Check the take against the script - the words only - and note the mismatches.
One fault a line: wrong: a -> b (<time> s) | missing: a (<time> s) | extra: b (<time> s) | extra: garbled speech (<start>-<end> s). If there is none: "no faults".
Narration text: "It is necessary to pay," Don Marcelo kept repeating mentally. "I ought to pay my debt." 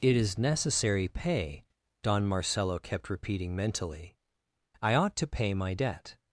missing: to (1.1 s)